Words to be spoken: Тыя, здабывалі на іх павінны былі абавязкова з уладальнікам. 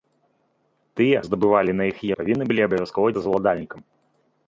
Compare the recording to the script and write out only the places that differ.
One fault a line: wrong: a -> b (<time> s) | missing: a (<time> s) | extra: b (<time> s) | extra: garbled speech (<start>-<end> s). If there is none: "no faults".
no faults